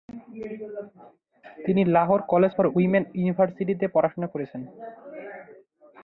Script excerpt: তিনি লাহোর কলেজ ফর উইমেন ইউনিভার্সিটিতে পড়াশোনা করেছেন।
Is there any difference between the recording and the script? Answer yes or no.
no